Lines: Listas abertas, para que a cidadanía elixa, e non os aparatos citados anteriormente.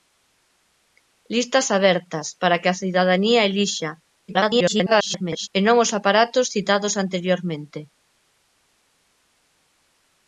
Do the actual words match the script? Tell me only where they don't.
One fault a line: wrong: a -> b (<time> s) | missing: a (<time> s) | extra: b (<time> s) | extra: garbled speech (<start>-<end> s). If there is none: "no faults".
extra: garbled speech (4.3-5.5 s)